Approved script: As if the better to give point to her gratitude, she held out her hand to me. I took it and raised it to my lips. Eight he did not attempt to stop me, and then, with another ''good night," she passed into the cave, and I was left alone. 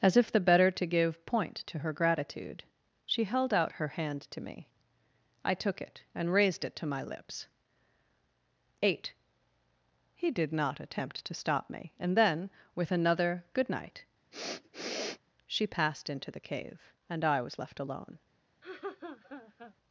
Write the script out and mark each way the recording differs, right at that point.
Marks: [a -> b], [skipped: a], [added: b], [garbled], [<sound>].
As if the better to give point to her gratitude, she held out her hand to me. I took it and raised it to my lips. Eight he did not attempt to stop me, and then, with another ''good night," [sniff] she passed into the cave, and I was left alone. [laugh]